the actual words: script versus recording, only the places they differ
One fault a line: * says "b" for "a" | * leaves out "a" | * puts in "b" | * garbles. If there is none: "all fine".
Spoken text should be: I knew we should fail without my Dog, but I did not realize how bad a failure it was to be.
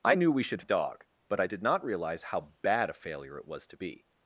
* leaves out "fail without my"